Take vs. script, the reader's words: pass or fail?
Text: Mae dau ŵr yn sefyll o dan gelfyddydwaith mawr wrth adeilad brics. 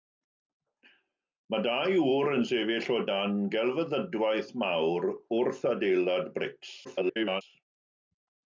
fail